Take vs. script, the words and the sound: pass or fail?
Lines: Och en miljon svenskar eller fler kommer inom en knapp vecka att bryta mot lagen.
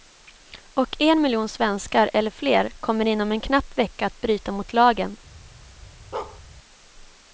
fail